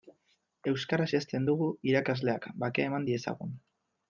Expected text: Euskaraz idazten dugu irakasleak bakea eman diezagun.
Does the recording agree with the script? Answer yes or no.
yes